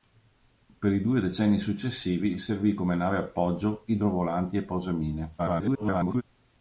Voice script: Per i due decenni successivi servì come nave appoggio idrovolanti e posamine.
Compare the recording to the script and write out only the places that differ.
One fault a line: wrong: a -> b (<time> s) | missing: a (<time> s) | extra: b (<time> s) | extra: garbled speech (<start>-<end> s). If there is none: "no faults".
extra: garbled speech (5.4-6.2 s)